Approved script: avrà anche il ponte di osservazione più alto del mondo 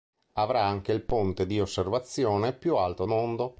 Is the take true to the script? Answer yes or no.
no